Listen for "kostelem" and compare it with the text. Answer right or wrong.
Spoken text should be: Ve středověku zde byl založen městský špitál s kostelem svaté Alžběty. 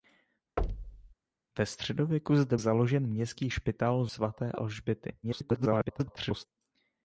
wrong